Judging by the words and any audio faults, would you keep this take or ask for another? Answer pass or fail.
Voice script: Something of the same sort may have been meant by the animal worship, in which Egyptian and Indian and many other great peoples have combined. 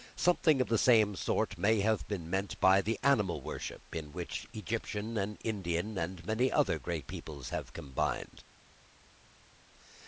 pass